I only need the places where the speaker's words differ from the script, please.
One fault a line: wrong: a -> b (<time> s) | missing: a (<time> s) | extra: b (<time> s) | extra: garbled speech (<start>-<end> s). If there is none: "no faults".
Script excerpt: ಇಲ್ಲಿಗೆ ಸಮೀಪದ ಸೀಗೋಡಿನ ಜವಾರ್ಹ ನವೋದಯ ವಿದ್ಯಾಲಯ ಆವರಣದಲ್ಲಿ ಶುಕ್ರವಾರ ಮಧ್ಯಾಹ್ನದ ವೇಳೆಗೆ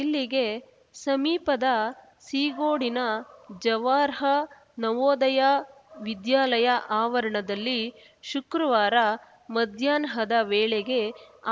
no faults